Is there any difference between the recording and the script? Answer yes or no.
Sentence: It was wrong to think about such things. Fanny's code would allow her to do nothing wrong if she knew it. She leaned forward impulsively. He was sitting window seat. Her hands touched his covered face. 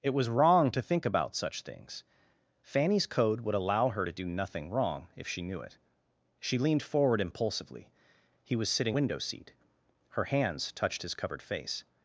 no